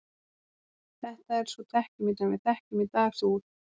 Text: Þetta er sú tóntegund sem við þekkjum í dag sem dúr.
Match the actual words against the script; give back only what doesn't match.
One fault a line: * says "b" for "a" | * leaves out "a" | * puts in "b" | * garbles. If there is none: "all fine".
* says "þekkjum" for "tóntegund"
* leaves out "sem"